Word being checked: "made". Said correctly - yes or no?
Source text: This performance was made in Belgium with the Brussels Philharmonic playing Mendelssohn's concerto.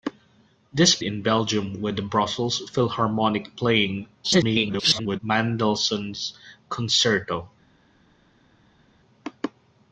no